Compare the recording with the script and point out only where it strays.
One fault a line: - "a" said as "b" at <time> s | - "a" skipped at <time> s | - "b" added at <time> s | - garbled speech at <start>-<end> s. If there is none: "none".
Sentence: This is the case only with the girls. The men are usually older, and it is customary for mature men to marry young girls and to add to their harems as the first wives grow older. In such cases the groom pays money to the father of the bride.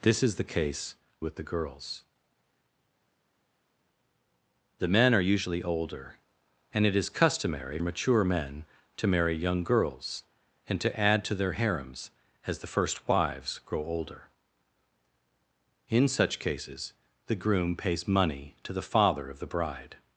- "only" skipped at 0.9 s
- "for" skipped at 7.8 s